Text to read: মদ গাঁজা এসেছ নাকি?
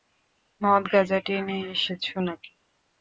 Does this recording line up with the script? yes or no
no